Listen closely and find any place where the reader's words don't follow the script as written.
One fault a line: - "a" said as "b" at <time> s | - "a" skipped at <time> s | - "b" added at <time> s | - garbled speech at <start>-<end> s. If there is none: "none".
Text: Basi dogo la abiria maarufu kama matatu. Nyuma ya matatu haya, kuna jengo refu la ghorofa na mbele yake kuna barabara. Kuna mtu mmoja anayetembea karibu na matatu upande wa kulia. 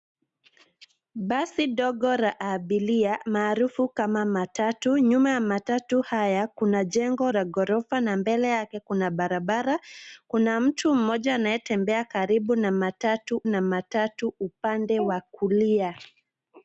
- "refu" skipped at 7.3 s
- "na matatu" added at 13.5 s